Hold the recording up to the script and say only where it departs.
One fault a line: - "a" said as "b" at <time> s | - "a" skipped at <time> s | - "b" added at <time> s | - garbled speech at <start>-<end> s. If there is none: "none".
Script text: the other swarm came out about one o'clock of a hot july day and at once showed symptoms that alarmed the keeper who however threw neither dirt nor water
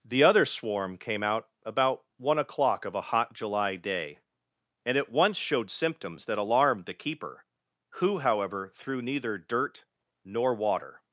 none